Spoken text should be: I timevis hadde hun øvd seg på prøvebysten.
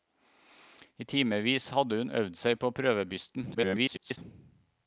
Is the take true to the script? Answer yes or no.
no